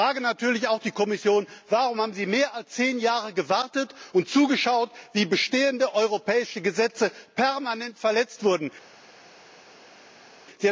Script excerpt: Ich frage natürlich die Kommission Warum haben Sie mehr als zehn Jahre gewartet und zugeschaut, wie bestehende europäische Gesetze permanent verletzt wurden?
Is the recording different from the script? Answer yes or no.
yes